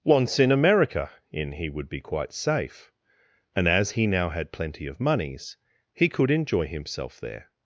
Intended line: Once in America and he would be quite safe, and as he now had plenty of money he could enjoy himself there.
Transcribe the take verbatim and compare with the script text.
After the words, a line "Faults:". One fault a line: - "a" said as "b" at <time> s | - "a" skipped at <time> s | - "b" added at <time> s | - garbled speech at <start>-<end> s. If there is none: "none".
Once in America in he would be quite safe, and as he now had plenty of moneys he could enjoy himself there.
Faults:
- "and" said as "in" at 1.3 s
- "money" said as "moneys" at 5.0 s